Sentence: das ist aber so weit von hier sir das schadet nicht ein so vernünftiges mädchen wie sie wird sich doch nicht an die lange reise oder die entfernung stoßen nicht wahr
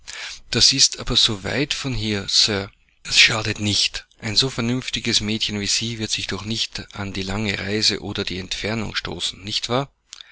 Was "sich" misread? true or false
false